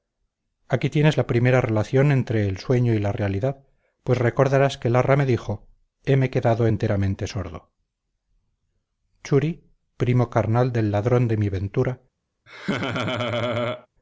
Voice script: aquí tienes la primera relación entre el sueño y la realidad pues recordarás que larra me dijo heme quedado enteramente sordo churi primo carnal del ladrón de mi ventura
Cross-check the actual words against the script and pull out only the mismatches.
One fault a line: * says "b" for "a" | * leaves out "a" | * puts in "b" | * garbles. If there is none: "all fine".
all fine